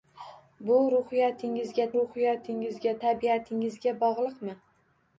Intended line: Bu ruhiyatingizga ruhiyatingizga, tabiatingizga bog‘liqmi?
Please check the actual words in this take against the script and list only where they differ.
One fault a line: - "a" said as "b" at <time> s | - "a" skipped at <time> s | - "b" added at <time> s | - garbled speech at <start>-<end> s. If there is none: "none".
none